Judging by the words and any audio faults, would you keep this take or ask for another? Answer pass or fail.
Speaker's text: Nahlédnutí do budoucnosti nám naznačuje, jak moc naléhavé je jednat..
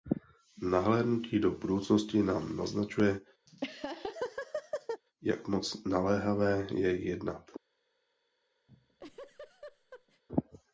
fail